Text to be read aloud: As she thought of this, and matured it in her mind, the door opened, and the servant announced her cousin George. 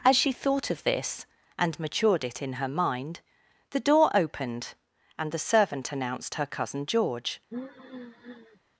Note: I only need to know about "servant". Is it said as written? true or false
true